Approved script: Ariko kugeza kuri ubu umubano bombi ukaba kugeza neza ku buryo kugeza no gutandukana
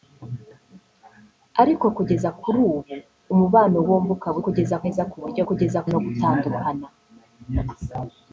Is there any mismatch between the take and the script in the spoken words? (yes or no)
no